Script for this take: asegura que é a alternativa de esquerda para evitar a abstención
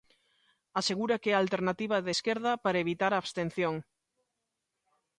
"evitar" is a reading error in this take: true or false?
false